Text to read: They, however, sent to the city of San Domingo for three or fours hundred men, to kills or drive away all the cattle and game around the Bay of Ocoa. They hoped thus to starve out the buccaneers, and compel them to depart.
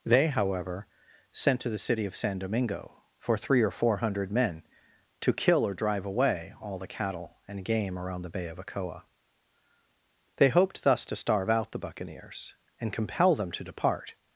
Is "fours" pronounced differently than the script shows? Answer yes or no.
yes